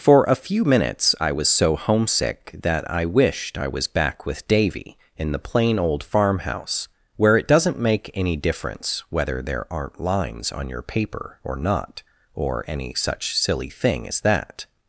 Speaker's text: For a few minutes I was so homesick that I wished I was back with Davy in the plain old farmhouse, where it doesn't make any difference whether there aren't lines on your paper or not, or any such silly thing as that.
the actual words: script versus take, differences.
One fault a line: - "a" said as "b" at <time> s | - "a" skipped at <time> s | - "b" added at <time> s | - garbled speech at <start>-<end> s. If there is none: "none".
none